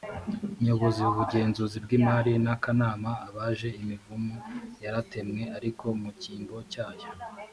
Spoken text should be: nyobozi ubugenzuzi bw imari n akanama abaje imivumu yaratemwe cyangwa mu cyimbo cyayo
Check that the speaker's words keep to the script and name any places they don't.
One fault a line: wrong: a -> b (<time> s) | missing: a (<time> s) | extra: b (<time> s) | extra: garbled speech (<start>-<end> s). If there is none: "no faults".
wrong: cyangwa -> ariko (5.6 s)